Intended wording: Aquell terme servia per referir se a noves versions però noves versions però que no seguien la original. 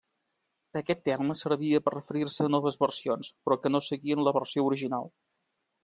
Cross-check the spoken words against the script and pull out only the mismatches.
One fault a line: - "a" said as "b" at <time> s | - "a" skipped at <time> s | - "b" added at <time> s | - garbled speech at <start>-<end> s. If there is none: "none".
- "Aquell" said as "Aquest" at 0.8 s
- "noves versions però" skipped at 3.6 s
- "versió" added at 4.4 s